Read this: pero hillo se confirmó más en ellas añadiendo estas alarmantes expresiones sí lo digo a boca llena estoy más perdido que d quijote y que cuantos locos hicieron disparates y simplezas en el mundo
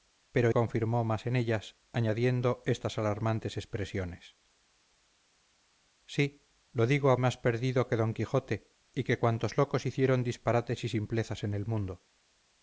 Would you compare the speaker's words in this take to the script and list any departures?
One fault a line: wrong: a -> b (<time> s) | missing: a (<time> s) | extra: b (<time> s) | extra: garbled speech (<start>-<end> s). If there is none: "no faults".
missing: hillo se (0.5 s)
missing: boca llena estoy (7.2 s)